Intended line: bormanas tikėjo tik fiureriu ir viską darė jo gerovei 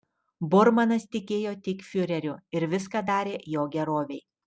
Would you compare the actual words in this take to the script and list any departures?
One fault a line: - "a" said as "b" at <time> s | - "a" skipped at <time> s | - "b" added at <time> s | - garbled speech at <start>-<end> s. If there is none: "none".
none